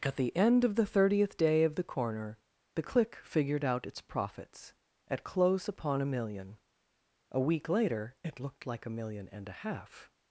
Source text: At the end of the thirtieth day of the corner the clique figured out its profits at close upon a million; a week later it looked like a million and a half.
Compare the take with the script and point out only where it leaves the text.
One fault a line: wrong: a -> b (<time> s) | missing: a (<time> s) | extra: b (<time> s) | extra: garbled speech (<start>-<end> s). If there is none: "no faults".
no faults